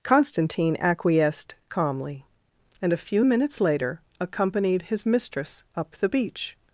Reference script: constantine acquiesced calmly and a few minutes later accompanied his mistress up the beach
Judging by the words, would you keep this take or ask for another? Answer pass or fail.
pass